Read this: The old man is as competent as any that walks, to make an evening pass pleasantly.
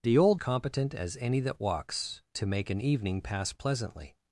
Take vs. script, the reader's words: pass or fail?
fail